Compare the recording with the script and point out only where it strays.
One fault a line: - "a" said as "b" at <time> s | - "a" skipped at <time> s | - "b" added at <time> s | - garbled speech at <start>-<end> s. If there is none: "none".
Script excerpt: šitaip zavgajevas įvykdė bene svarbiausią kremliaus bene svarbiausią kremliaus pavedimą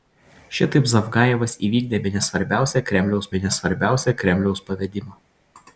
none